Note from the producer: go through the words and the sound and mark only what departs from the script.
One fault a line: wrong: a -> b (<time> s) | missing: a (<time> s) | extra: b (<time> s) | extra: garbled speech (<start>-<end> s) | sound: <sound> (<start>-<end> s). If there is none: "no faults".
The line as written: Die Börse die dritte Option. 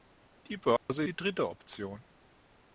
sound: dropout (0.8-0.9 s)